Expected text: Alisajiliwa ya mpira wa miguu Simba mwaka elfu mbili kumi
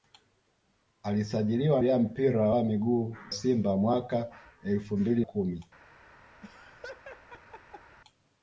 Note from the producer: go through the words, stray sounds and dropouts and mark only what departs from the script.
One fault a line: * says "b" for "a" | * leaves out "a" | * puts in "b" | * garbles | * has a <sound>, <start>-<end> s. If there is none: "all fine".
* has a laugh, 6.4-8.0 s